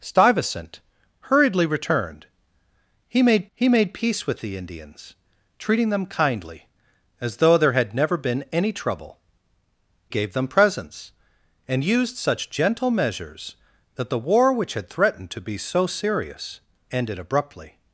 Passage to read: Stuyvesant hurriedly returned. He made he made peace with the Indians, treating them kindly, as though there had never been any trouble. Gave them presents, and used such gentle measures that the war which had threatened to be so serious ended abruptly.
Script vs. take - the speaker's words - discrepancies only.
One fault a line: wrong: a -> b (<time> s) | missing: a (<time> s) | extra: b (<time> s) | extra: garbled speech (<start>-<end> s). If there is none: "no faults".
no faults